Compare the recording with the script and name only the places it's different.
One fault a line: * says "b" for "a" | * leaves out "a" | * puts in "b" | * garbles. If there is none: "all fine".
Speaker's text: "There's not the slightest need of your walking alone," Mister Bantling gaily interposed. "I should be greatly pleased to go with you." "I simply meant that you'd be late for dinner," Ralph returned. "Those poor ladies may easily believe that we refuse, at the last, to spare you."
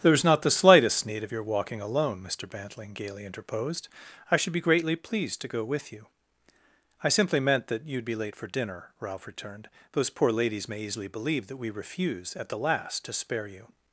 all fine